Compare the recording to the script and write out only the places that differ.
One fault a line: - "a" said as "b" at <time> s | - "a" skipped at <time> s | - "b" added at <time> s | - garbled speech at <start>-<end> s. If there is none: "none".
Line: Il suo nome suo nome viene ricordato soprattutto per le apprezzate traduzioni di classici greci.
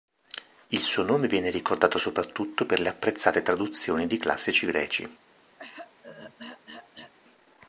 - "suo nome" skipped at 1.3 s